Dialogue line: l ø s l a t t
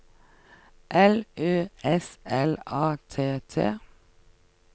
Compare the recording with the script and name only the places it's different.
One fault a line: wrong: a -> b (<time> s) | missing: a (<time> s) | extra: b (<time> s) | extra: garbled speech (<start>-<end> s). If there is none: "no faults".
no faults